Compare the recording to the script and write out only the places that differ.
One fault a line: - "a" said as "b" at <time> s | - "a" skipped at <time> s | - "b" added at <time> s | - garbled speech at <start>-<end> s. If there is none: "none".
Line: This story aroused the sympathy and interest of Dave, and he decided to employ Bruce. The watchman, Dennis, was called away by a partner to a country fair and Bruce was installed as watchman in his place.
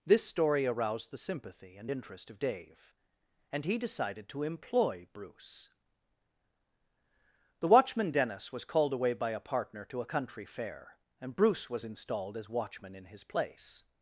none